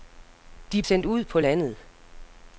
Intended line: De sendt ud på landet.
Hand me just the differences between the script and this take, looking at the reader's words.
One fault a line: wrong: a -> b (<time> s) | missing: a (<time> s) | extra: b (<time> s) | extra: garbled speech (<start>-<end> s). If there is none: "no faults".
no faults